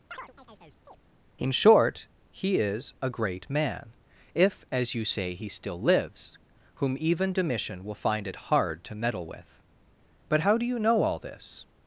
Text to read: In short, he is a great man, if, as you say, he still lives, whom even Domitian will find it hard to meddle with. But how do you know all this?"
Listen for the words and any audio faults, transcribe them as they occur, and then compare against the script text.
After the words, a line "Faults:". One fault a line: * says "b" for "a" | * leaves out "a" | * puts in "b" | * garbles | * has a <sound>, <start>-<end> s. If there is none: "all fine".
In short, he is a great man, if, as you say, he still lives, whom even Domitian will find it hard to meddle with. But how do you know all this?"
Faults:
* has a chirp, 0.1-1.0 s